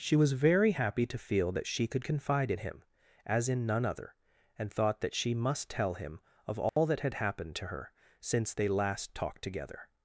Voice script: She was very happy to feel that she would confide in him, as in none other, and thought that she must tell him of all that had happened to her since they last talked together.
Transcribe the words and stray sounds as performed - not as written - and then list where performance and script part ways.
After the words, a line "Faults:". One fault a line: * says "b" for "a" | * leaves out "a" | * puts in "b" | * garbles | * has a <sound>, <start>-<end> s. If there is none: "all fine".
She was very happy to feel that she could confide in him, as in none other, and thought that she must tell him of all that had happened to her since they last talked together.
Faults:
* says "could" for "would"
* has a dropout, 6.7-6.8 s